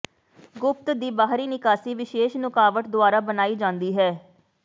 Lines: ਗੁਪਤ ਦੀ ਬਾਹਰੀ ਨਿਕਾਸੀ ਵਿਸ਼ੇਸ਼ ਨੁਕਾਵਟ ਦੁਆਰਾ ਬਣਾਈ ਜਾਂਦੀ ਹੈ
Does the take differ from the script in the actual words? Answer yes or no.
no